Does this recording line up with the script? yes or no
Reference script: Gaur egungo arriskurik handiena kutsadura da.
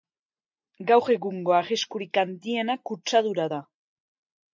yes